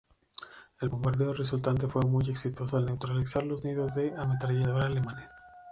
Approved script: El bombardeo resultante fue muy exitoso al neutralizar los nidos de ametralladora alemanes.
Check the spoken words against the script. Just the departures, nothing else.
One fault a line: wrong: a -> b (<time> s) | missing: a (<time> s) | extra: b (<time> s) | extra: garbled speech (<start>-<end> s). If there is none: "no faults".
no faults